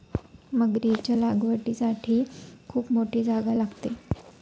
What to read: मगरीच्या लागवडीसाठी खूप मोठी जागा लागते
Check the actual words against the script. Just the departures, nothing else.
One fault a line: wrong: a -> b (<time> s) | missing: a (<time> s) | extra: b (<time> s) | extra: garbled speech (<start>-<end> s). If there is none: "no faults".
no faults